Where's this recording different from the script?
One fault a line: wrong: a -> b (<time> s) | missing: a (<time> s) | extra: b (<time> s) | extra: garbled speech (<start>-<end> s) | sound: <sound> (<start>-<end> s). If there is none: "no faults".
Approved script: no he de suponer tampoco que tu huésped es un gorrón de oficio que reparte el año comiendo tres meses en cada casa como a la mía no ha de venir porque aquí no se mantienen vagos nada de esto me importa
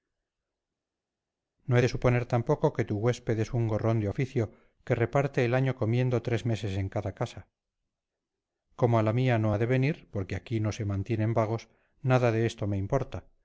no faults